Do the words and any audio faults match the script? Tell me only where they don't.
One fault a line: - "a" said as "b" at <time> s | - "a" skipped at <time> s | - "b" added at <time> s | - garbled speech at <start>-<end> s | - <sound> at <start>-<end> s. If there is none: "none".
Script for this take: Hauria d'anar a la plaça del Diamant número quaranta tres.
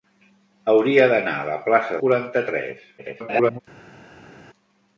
- "del Diamant número" skipped at 2.0 s
- garbled speech at 3.0-3.6 s